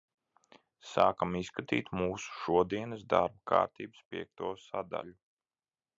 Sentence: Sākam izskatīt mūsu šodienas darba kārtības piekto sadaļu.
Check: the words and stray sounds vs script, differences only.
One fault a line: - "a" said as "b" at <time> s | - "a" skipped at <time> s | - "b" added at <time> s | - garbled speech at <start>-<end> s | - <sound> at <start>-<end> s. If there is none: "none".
none